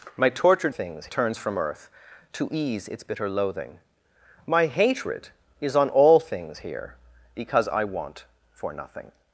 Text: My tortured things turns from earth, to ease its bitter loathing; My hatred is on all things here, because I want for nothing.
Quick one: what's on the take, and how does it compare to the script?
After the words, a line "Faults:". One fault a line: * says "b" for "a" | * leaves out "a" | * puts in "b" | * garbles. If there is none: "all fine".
My tortured things turns from earth, to ease its bitter loathing; My hatred is on all things here, because I want for nothing.
Faults:
all fine